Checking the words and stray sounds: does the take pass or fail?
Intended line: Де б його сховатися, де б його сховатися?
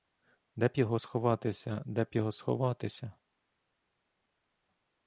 pass